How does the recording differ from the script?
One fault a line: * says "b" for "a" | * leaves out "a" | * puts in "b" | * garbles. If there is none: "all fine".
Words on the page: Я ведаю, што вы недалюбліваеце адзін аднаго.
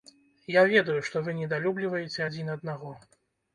all fine